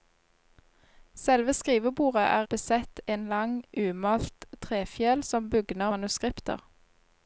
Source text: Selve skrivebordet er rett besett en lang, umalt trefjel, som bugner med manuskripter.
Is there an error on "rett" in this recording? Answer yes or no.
yes